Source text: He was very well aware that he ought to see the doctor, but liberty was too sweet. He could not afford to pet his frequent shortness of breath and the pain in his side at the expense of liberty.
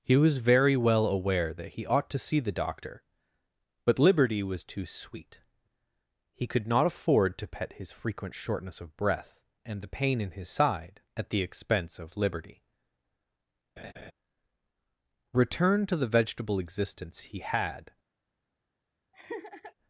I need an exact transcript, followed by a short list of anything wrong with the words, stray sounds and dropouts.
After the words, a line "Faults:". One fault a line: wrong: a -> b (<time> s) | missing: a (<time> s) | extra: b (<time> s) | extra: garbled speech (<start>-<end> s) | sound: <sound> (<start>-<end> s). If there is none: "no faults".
He was very well aware that he ought to see the doctor, but liberty was too sweet. He could not afford to pet his frequent shortness of breath and the pain in his side at the expense of liberty. Return to the vegetable existence he had
Faults:
sound: laugh (13.8-14.1 s)
extra: Return to the vegetable existence he had (15.3 s)
sound: laugh (19.1-19.7 s)